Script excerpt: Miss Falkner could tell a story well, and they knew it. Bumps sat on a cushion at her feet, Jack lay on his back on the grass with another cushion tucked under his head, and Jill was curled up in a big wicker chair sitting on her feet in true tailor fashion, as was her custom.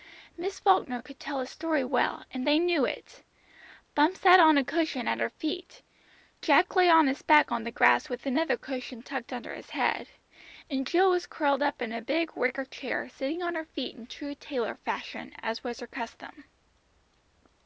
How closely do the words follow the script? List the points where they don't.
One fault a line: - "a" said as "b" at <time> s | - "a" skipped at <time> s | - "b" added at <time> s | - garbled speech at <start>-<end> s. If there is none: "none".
none